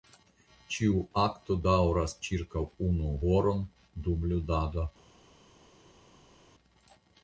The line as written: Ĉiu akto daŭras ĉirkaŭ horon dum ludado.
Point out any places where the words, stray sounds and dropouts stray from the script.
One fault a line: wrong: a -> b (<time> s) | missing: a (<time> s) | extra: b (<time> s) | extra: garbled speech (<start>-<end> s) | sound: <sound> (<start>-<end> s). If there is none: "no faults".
extra: unu (2.9 s)